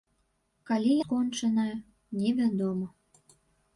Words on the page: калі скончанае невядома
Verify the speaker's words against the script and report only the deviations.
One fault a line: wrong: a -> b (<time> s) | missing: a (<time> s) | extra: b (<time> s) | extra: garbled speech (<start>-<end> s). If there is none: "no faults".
no faults